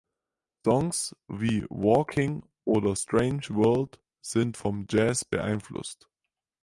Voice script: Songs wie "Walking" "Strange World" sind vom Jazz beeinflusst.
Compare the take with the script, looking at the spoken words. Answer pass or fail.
fail